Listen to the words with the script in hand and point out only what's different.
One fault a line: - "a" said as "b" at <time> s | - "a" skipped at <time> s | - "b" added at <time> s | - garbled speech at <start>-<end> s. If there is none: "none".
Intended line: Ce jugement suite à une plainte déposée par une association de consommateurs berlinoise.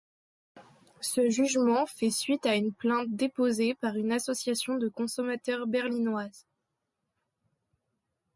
- "fait" added at 1.9 s